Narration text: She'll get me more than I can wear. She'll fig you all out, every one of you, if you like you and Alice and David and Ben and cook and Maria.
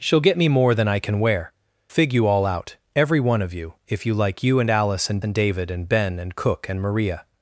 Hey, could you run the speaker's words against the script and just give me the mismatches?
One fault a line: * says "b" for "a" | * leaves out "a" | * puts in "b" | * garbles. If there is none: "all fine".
* leaves out "She'll"
* puts in "and"